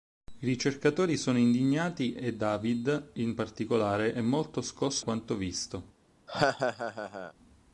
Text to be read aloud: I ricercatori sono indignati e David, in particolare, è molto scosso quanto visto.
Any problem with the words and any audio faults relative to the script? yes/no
yes